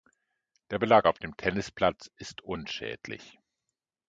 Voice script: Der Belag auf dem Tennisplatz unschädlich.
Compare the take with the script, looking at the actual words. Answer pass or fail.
fail